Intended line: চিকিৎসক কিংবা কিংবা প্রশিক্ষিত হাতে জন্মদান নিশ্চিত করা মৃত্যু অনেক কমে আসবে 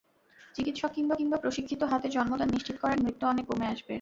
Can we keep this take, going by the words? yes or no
yes